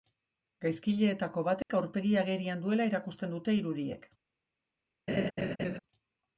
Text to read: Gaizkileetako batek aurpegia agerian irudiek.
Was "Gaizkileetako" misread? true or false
false